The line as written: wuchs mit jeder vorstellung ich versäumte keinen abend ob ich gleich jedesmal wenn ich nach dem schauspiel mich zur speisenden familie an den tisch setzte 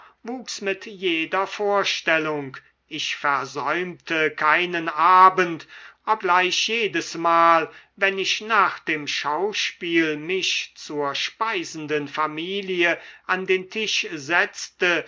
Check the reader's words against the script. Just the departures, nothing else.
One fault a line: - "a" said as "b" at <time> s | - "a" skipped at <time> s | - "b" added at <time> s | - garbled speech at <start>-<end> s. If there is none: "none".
- "ich" skipped at 6.2 s